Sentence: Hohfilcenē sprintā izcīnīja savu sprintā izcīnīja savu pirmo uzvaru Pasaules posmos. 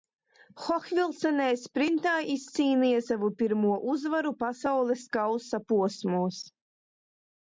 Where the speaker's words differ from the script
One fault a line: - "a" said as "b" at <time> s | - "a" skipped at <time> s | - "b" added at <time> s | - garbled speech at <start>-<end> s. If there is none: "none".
- "sprintā izcīnīja savu" skipped at 3.3 s
- "kausa" added at 5.2 s